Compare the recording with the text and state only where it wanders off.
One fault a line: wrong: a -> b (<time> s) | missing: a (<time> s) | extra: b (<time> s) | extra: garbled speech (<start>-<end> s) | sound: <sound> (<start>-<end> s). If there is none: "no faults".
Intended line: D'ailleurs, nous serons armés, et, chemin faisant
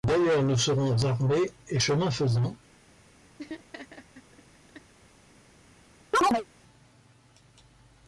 sound: laugh (3.4-4.9 s)
sound: chirp (6.1-6.5 s)